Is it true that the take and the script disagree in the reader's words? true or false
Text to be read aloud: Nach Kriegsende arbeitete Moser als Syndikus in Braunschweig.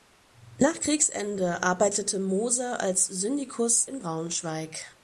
false